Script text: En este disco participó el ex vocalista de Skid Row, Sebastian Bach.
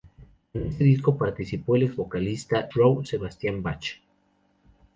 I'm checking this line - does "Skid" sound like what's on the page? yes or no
no